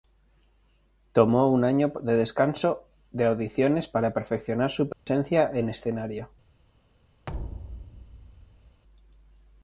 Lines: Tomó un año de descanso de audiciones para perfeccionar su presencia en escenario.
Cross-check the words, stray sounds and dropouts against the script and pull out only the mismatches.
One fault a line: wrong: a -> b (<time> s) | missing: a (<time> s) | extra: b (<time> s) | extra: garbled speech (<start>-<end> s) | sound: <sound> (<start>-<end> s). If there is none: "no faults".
sound: dropout (4.9-5.1 s)
sound: thud (7.3-8.8 s)